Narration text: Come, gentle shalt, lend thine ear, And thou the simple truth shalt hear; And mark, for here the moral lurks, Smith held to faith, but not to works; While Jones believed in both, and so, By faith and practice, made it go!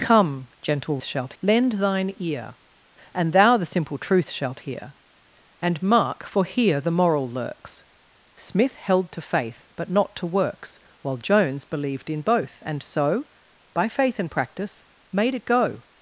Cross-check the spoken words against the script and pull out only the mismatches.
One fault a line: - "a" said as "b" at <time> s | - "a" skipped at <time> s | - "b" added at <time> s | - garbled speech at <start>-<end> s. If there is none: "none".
none